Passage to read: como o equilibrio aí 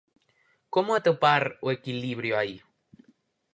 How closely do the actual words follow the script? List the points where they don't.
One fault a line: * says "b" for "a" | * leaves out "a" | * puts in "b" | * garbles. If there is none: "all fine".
* puts in "atopar"